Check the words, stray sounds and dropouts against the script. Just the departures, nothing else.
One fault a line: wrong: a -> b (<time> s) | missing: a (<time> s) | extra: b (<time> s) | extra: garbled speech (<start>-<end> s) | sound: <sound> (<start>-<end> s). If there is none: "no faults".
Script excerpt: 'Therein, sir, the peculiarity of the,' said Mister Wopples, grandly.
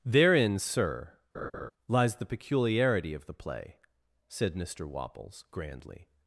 sound: laugh (1.3-1.7 s)
extra: lies (1.9 s)
extra: play (3.3 s)